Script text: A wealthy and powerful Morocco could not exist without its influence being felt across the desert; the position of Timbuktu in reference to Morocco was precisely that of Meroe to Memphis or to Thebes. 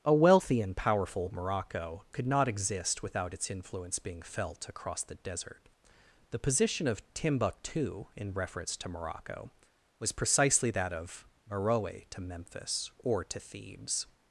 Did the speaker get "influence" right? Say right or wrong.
right